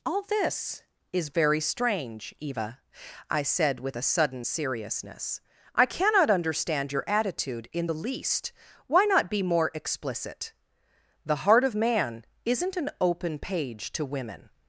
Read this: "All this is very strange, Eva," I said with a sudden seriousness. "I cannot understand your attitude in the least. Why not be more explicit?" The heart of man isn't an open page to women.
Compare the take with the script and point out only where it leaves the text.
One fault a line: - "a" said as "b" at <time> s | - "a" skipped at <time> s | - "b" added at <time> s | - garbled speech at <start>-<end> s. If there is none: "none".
none